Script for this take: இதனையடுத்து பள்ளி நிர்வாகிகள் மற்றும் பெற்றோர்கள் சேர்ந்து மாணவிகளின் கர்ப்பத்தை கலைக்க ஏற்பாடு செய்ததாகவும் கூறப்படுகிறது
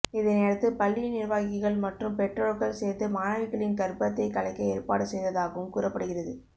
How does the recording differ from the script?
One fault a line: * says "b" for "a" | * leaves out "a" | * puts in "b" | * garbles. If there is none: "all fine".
all fine